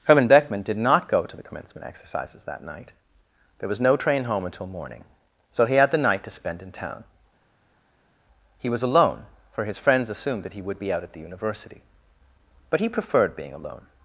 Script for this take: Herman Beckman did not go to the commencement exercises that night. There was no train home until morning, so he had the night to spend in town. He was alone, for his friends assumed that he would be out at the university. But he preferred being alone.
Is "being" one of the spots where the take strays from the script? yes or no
no